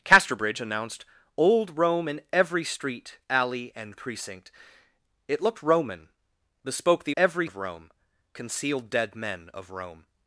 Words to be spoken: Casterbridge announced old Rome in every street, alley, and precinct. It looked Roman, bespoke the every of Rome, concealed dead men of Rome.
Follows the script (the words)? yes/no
yes